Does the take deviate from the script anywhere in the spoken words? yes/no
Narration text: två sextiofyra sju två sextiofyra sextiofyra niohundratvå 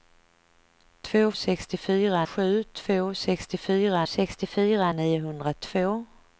no